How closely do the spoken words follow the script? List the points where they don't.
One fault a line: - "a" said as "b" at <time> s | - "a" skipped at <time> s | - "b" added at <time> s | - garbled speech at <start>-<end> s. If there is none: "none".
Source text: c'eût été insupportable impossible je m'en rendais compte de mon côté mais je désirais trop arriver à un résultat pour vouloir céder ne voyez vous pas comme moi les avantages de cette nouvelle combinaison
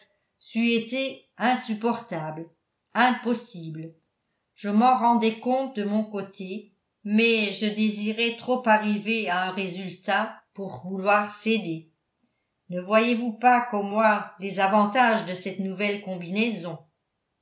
none